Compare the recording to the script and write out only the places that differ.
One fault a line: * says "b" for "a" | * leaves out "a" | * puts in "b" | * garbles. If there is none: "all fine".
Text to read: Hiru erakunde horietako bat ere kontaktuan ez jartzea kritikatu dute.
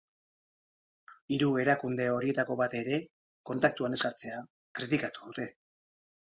all fine